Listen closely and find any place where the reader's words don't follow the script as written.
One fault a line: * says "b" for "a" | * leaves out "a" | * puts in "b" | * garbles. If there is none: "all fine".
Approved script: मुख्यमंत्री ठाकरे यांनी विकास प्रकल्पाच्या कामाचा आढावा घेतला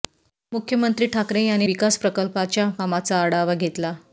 all fine